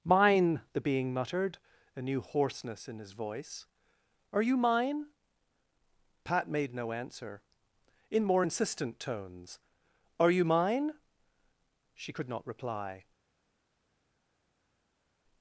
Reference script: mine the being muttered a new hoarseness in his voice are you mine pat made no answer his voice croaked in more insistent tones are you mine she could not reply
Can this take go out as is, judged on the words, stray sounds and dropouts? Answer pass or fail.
fail